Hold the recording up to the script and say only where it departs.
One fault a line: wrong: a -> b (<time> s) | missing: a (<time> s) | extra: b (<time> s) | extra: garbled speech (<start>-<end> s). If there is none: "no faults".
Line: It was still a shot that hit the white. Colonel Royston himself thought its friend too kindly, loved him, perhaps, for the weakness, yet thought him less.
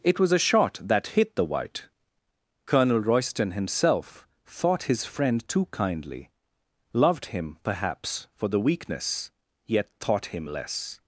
missing: still (0.3 s)
wrong: its -> his (4.8 s)